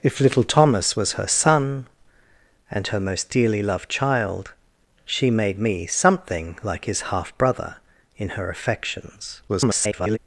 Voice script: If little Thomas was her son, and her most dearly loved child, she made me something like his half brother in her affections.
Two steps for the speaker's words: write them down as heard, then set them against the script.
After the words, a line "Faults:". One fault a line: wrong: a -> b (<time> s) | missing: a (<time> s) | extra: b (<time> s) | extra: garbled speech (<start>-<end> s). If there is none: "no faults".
If little Thomas was her son, and her most dearly loved child, she made me something like his half brother in her affections. [garbled]
Faults:
extra: garbled speech (9.5-10.2 s)